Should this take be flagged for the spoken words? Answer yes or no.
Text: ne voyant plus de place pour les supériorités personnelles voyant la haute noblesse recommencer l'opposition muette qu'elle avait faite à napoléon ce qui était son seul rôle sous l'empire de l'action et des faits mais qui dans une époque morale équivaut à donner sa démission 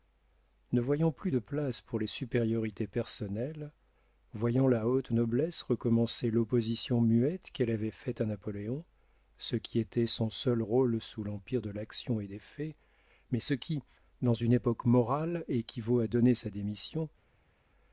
yes